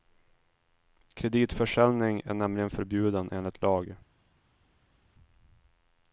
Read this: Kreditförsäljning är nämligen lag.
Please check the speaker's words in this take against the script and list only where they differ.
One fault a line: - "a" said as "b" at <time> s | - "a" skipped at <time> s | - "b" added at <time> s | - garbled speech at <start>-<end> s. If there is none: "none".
- "förbjuden enligt" added at 2.7 s